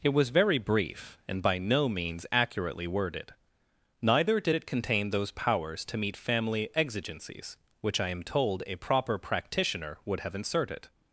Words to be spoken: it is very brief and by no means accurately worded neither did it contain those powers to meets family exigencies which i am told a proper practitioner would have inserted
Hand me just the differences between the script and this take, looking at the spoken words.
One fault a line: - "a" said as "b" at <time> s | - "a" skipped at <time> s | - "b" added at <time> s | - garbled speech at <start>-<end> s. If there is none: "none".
- "is" said as "was" at 0.1 s
- "meets" said as "meet" at 6.0 s